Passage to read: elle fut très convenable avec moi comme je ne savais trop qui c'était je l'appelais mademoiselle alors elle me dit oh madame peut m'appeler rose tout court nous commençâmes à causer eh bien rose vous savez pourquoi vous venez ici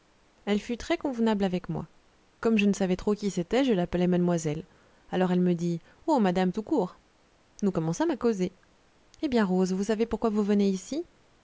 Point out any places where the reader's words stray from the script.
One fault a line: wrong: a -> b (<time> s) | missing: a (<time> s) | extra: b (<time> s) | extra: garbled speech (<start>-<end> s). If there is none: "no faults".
missing: peut m'appeler rose (6.5 s)